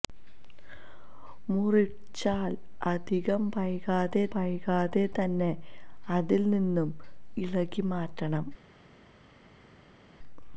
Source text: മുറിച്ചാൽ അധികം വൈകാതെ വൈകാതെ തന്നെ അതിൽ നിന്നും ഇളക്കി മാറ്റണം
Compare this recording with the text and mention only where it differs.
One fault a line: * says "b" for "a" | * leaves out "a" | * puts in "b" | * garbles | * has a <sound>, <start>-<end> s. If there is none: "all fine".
all fine